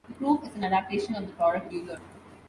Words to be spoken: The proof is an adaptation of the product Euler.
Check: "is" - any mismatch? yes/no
no